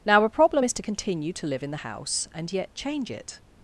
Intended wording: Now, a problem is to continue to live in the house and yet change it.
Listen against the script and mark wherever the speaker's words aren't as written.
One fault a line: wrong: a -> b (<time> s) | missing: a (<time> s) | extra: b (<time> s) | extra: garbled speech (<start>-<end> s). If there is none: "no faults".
no faults